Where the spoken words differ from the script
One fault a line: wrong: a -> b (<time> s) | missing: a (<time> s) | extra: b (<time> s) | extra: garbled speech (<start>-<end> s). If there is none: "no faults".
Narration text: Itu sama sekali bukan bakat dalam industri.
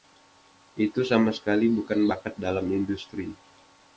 no faults